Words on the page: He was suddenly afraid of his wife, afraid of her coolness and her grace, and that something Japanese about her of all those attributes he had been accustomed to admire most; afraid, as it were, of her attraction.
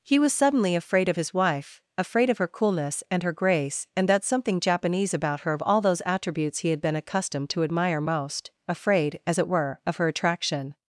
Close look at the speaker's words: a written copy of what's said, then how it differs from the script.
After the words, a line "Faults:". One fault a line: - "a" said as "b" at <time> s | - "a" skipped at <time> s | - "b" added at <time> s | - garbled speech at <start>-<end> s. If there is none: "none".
He was suddenly afraid of his wife, afraid of her coolness and her grace, and that something Japanese about her of all those attributes he had been accustomed to admire most; afraid, as it were, of her attraction.
Faults:
none